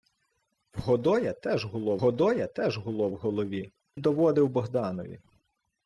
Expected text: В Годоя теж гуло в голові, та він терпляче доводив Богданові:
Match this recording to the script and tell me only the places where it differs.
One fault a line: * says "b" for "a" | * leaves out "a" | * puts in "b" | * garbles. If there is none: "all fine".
* says "Годоя теж гуло в голові" for "в голові та він терпляче"